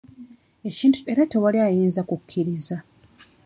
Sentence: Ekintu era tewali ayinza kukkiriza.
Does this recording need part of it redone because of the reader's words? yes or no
no